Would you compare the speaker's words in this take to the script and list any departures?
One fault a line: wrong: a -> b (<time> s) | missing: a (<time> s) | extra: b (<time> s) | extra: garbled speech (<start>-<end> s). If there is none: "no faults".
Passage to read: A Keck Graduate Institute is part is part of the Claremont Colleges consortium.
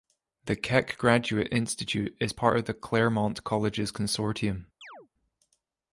wrong: A -> The (0.5 s)
missing: is part (2.6 s)